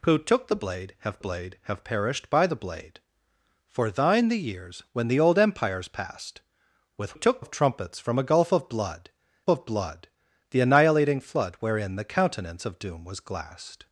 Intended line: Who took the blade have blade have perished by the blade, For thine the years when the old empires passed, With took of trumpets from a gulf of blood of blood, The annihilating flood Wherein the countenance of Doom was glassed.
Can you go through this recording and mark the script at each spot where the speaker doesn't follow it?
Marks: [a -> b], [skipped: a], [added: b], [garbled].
Who took the blade have blade have perished by the blade, For thine the years when the old empires passed, With took of trumpets from a gulf of blood of blood, The annihilating flood Wherein the countenance of Doom was glassed.